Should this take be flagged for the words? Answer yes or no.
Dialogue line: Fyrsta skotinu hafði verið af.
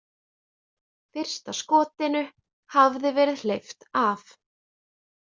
yes